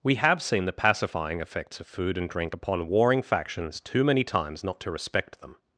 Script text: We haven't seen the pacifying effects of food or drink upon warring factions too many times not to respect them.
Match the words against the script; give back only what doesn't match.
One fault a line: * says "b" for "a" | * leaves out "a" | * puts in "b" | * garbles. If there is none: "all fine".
* says "have" for "haven't"
* says "and" for "or"